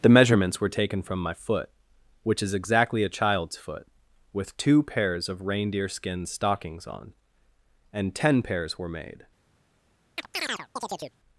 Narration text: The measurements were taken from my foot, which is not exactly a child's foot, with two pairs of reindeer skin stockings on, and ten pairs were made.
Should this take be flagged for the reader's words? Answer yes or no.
yes